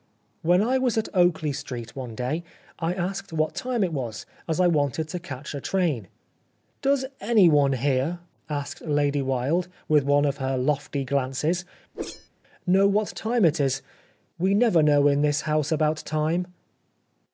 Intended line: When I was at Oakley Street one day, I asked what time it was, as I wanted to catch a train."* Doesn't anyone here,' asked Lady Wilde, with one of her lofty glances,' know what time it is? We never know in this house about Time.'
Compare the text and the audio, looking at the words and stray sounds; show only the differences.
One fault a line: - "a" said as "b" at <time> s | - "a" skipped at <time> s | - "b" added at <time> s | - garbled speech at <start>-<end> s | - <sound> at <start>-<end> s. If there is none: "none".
- "Doesn't" said as "Does" at 6.8 s
- whoosh at 11.9-12.3 s